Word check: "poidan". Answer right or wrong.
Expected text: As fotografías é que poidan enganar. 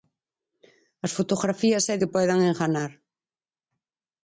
right